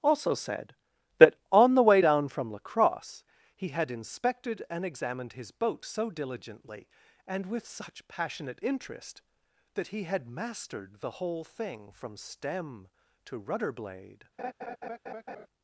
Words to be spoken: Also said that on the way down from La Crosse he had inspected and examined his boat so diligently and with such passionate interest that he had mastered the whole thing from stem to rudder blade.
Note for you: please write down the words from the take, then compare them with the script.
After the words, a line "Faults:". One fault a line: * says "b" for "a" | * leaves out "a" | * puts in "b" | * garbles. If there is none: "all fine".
Also said that on the way down from La Crosse he had inspected and examined his boat so diligently and with such passionate interest that he had mastered the whole thing from stem to rudder blade.
Faults:
all fine